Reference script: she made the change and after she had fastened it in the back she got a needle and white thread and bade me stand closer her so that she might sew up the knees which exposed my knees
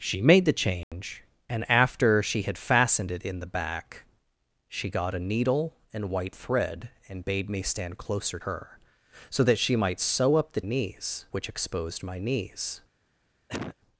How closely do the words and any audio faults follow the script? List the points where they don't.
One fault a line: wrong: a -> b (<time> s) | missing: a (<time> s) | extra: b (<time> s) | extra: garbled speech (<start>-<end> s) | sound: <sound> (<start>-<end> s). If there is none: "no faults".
sound: dropout (0.8-0.9 s)
sound: cough (13.5-13.8 s)